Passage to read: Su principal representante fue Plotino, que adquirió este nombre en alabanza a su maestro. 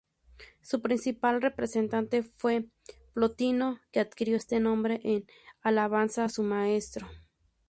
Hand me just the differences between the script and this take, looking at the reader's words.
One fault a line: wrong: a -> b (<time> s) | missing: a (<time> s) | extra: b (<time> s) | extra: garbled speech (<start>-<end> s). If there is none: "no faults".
no faults